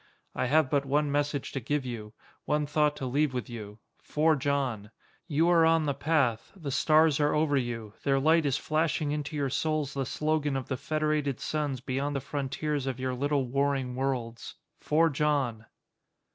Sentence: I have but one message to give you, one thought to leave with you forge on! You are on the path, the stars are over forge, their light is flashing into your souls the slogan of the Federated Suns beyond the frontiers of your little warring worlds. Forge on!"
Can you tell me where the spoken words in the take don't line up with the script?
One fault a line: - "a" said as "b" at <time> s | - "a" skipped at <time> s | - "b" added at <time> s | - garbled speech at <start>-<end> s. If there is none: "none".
- "forge" said as "you" at 7.5 s